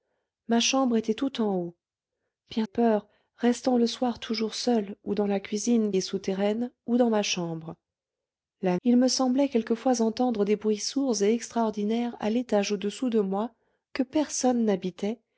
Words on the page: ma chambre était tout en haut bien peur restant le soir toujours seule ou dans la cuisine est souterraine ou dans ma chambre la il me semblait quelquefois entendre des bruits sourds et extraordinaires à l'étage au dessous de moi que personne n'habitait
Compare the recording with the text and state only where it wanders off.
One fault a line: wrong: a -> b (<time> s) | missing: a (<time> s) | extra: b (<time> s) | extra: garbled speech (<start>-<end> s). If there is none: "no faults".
no faults